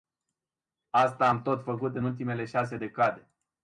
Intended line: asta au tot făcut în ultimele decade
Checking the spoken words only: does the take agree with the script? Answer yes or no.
no